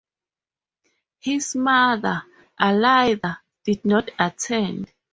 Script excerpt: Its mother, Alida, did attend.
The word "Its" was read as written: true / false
false